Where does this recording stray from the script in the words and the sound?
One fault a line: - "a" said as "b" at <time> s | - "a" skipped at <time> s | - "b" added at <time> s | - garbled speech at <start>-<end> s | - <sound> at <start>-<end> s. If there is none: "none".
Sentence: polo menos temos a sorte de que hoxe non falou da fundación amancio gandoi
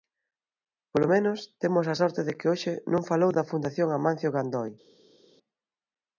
none